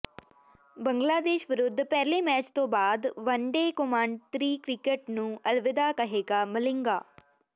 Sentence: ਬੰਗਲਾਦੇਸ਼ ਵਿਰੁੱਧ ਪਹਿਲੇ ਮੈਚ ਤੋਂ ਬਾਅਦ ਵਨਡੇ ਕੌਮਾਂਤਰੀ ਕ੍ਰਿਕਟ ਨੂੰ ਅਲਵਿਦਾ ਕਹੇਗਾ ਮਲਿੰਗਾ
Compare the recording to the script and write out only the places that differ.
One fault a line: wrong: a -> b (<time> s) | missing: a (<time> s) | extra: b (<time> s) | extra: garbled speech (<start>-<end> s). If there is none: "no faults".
no faults